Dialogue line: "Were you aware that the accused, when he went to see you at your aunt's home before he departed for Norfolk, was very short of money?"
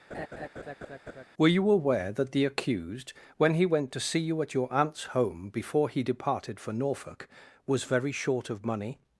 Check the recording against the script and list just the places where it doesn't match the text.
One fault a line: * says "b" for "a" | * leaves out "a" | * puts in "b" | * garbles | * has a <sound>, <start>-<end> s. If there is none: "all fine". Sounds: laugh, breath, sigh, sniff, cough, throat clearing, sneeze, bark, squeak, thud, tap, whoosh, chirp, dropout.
* has a laugh, 0.1-1.3 s